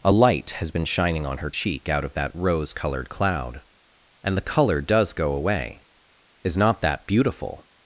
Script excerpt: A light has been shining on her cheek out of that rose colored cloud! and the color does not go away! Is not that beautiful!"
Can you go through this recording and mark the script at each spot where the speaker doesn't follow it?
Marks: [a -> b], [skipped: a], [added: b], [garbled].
A light has been shining on her cheek out of that rose colored cloud! and the color does [skipped: not] go away! Is not that beautiful!"